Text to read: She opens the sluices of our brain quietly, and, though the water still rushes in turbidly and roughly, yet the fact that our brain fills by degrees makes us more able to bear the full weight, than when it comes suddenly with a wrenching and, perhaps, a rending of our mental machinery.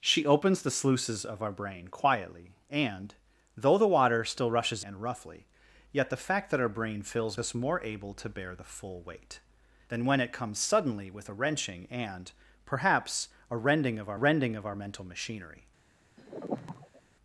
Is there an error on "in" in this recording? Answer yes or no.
yes